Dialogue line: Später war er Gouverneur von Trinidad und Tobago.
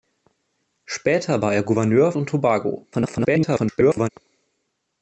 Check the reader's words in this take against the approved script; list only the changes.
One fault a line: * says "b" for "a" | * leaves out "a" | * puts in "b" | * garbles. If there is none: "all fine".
* leaves out "von Trinidad"
* garbles